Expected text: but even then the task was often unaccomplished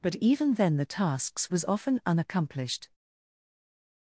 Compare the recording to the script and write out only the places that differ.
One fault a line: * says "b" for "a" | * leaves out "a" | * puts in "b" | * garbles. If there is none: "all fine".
* says "tasks" for "task"